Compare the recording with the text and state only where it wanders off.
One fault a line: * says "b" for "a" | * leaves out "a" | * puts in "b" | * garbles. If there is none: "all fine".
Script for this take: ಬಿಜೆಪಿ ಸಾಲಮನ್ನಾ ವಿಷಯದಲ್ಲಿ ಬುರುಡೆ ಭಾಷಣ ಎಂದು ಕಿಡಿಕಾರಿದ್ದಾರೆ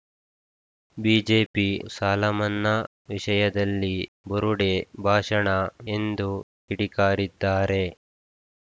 all fine